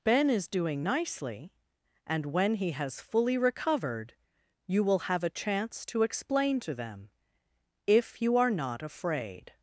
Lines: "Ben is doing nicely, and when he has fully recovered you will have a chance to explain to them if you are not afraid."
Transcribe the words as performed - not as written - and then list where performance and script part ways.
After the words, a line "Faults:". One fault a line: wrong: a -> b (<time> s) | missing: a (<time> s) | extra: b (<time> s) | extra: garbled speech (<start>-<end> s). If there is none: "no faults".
"Ben is doing nicely, and when he has fully recovered you will have a chance to explain to them if you are not afraid."
Faults:
no faults